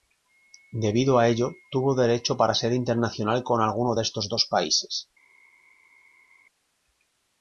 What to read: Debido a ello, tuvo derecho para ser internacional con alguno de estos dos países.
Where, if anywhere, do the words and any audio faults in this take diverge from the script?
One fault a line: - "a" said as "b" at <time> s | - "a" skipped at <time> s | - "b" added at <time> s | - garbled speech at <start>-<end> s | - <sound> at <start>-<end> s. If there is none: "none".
none